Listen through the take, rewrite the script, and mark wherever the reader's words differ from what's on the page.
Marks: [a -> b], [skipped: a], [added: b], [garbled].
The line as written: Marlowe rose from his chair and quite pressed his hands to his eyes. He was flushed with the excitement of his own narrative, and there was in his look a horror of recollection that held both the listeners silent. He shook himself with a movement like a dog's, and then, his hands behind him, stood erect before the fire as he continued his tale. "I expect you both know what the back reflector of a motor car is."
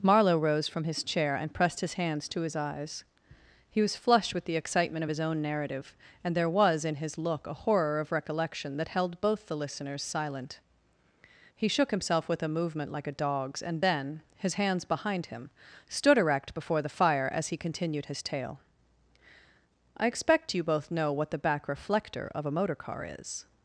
Marlowe rose from his chair and [skipped: quite] pressed his hands to his eyes. He was flushed with the excitement of his own narrative, and there was in his look a horror of recollection that held both the listeners silent. He shook himself with a movement like a dog's, and then, his hands behind him, stood erect before the fire as he continued his tale. "I expect you both know what the back reflector of a motor car is."